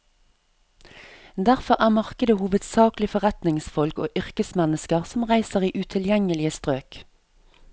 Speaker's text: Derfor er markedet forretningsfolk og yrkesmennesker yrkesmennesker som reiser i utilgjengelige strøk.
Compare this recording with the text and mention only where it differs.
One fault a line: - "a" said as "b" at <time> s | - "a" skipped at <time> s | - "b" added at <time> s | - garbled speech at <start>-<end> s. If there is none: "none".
- "hovedsakelig" added at 2.4 s
- "yrkesmennesker" skipped at 5.0 s